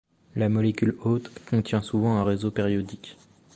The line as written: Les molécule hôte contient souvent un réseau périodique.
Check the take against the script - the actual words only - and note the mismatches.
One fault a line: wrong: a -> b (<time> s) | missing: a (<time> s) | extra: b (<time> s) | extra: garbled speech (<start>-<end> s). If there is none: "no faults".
wrong: Les -> La (0.3 s)